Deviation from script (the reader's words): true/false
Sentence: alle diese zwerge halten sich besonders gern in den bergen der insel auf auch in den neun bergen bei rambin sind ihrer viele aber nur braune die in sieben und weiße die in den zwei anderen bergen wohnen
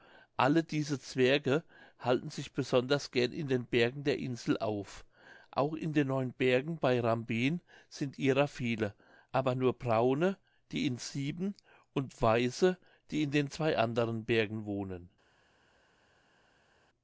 false